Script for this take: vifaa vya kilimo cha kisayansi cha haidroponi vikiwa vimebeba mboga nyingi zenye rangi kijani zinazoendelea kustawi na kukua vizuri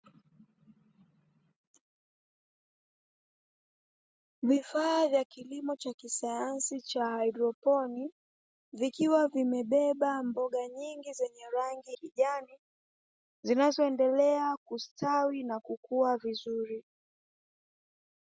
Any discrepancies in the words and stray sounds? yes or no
no